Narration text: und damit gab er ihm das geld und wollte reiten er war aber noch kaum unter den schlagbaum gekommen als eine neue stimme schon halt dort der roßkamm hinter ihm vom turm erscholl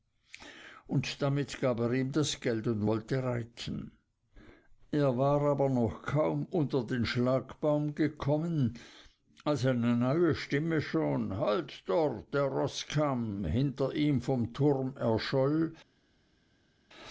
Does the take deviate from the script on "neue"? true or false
false